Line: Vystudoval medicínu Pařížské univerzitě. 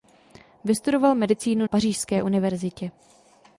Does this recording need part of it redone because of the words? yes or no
no